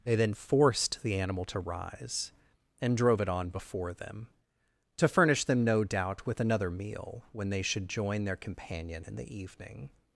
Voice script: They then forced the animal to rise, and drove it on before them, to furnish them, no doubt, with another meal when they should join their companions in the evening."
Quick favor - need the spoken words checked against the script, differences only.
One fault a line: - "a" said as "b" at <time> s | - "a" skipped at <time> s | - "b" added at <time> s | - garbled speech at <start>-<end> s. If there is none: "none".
- "companions" said as "companion" at 8.3 s